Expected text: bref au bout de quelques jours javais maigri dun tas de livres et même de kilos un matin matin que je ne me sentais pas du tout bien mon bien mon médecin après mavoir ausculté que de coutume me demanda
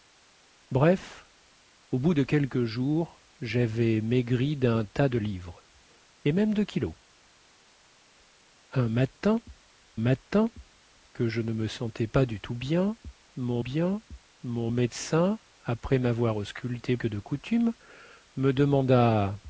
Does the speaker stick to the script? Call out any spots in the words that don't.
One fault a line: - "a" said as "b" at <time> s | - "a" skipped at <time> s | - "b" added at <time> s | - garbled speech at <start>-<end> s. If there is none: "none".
none